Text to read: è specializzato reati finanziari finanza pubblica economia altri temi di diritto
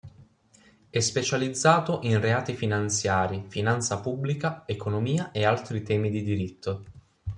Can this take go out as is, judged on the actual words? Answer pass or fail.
fail